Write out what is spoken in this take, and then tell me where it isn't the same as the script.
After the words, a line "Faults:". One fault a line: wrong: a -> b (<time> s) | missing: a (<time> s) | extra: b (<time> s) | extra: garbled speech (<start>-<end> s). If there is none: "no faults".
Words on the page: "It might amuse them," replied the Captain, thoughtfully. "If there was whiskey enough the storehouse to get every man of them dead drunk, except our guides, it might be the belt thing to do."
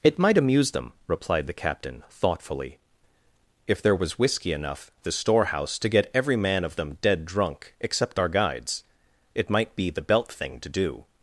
"It might amuse them," replied the Captain, thoughtfully. "If there was whiskey enough the storehouse to get every man of them dead drunk, except our guides, it might be the belt thing to do."
Faults:
no faults